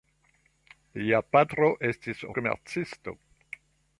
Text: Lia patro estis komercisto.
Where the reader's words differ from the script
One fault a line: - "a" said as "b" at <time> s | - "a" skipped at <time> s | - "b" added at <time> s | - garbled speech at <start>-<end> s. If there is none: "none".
none